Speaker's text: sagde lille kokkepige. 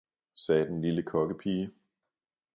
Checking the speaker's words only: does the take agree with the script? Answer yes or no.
no